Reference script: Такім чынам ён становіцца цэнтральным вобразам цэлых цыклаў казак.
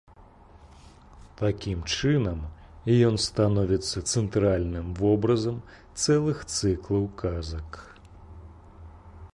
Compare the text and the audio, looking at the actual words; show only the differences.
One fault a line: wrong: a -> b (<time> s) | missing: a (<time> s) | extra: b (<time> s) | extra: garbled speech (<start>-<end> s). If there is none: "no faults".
no faults